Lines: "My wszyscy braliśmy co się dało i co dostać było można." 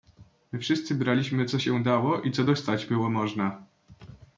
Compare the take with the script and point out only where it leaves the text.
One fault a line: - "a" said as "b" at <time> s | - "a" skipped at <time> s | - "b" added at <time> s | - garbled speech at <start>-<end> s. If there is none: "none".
none